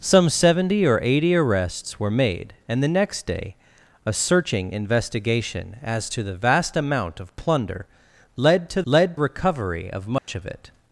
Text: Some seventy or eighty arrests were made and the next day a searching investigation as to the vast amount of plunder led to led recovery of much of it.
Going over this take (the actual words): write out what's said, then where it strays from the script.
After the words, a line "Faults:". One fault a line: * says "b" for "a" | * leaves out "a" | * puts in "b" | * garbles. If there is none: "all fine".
Some seventy or eighty arrests were made and the next day a searching investigation as to the vast amount of plunder led to led recovery of much of it.
Faults:
all fine